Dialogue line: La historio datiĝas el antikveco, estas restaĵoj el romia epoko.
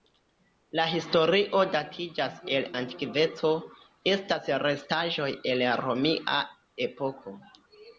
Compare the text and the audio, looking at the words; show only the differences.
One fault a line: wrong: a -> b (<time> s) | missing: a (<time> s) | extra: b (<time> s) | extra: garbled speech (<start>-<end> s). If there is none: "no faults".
no faults